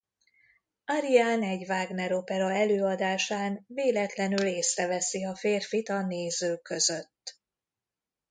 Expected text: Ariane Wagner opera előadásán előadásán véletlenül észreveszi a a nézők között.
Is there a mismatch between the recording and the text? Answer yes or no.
yes